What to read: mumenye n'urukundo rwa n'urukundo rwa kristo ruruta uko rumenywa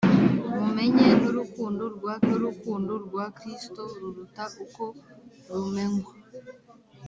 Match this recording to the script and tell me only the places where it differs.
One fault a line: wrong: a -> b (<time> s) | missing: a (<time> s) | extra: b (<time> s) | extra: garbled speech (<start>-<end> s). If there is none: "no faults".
no faults